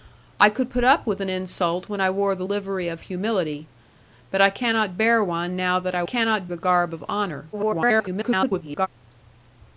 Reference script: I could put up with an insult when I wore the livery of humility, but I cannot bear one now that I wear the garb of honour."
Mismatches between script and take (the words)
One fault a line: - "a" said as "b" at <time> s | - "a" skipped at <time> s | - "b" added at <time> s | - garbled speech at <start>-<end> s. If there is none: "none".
- "wear" said as "cannot" at 6.0 s
- garbled speech at 7.5-8.9 s